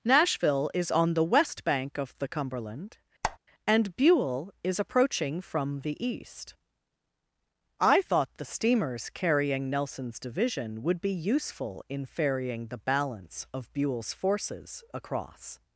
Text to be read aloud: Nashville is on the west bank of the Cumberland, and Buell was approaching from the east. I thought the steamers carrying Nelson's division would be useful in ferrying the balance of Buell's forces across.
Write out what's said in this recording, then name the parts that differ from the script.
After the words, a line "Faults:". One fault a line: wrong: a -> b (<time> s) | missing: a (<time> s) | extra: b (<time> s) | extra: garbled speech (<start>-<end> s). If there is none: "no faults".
Nashville is on the west bank of the Cumberland, and Buell is approaching from the east. I thought the steamers carrying Nelson's division would be useful in ferrying the balance of Buell's forces across.
Faults:
wrong: was -> is (4.6 s)